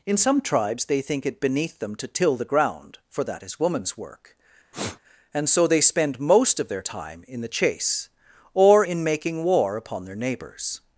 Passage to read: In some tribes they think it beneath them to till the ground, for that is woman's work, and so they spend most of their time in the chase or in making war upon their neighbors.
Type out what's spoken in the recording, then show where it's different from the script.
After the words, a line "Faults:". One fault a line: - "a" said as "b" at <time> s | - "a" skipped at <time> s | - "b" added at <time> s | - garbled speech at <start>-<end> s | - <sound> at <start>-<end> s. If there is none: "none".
In some tribes they think it beneath them to till the ground, for that is woman's work, and so they spend most of their time in the chase or in making war upon their neighbors.
Faults:
- sniff at 4.7-5.0 s